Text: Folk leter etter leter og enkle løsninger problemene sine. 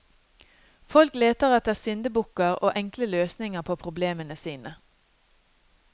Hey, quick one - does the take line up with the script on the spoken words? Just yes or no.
no